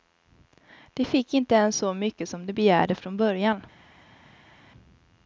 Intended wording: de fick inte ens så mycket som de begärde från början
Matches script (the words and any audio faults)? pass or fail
pass